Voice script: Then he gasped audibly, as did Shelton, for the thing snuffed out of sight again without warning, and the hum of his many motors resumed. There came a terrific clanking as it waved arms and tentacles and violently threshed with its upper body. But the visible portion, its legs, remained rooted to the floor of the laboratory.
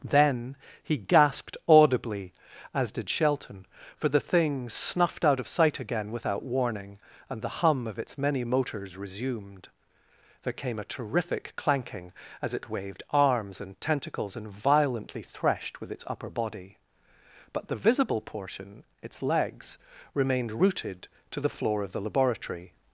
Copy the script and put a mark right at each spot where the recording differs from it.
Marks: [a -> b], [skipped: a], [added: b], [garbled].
Then he gasped audibly, as did Shelton, for the thing snuffed out of sight again without warning, and the hum of [his -> its] many motors resumed. There came a terrific clanking as it waved arms and tentacles and violently threshed with its upper body. But the visible portion, its legs, remained rooted to the floor of the laboratory.